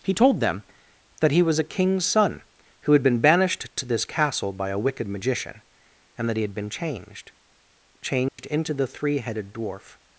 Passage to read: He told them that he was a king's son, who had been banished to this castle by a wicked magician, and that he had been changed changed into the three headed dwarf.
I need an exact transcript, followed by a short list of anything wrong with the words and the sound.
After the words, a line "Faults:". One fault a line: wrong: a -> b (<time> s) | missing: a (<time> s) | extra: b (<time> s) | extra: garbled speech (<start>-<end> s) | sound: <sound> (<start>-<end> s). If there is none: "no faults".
He told them that he was a king's son, who had been banished to this castle by a wicked magician, and that he had been changed changed into the three headed dwarf.
Faults:
sound: dropout (8.3-8.4 s)